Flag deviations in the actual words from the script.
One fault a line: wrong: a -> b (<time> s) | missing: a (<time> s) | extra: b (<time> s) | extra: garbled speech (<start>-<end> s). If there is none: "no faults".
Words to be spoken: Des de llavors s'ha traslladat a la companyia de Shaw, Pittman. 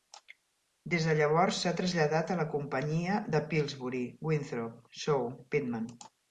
extra: Pillsbury Winthrop (3.5 s)